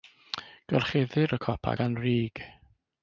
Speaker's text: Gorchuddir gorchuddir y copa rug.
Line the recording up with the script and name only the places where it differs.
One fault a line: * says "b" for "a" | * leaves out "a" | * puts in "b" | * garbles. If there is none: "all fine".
* leaves out "gorchuddir"
* puts in "gan"